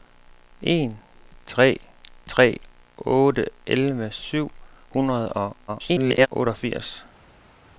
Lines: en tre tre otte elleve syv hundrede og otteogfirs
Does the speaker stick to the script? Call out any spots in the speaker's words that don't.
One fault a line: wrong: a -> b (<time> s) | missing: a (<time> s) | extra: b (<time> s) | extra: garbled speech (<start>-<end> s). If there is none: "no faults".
extra: garbled speech (5.7-6.3 s)